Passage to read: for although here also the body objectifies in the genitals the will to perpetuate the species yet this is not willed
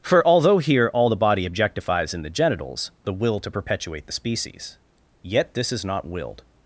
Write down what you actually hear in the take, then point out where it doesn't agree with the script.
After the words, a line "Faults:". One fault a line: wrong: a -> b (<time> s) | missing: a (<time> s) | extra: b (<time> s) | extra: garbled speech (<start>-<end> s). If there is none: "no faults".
for although here all the body objectifies in the genitals the will to perpetuate the species yet this is not willed
Faults:
wrong: also -> all (0.9 s)